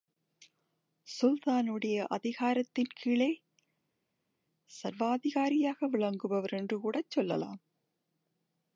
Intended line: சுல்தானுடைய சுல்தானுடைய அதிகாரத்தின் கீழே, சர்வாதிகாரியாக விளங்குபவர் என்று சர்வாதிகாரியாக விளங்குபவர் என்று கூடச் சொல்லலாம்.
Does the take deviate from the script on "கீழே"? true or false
false